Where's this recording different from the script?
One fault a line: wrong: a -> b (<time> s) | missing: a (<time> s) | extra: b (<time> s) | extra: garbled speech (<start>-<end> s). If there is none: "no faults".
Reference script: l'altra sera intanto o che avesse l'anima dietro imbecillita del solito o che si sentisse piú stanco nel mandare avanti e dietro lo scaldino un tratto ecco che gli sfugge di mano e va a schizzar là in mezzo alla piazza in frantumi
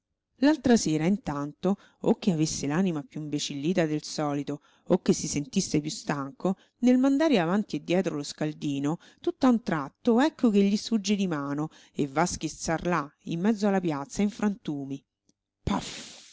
wrong: dietro -> piú (3.0 s)
extra: tutt'a (9.2 s)